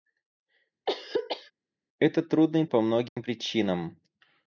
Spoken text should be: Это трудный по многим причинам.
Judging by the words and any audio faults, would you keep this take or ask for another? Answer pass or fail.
fail